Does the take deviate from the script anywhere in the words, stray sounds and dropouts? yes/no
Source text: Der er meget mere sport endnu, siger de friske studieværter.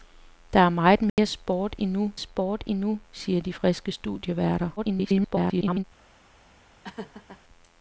yes